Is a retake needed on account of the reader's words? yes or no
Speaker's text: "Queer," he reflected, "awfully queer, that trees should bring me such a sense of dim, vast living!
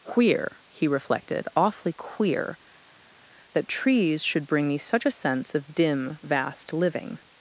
no